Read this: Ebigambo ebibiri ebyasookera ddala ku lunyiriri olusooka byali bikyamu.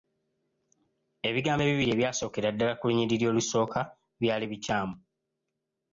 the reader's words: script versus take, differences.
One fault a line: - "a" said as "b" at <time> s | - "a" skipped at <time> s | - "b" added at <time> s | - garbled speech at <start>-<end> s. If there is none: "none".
none